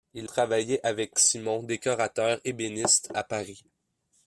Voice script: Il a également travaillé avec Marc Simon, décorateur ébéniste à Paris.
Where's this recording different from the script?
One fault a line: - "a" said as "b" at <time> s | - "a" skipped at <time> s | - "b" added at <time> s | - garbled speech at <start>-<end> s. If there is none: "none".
- "a également" skipped at 0.3 s
- "Marc" skipped at 1.2 s